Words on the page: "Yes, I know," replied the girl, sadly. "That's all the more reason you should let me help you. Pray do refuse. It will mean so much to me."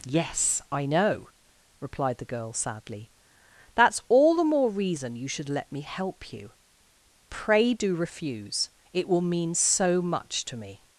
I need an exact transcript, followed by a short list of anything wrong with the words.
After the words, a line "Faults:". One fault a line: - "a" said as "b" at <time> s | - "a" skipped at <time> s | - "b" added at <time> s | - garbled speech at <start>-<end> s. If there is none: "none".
"Yes, I know," replied the girl, sadly. "That's all the more reason you should let me help you. Pray do refuse. It will mean so much to me."
Faults:
none